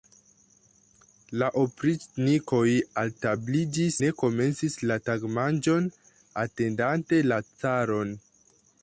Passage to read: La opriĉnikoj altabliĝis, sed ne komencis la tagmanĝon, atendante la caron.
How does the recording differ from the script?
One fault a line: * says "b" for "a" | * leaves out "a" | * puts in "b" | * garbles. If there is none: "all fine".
* leaves out "sed"